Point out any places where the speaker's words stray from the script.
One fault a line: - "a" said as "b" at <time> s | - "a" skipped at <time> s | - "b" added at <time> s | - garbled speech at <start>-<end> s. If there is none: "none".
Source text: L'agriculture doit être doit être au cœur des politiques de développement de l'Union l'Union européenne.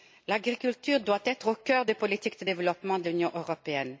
- "doit être" skipped at 1.5 s
- "l'Union" skipped at 3.3 s